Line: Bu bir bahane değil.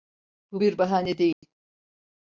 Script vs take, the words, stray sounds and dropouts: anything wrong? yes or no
yes